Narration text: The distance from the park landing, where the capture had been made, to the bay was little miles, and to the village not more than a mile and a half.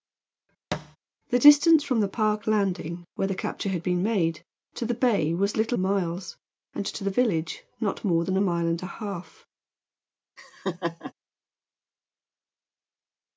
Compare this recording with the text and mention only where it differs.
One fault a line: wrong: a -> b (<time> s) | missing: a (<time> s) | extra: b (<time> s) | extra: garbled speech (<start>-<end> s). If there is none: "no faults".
no faults